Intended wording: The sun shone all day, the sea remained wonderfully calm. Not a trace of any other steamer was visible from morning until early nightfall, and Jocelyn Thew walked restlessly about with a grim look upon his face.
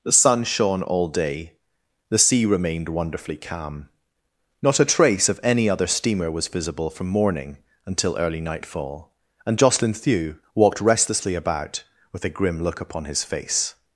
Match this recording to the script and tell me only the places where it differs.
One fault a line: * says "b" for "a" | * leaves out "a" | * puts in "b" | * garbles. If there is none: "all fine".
all fine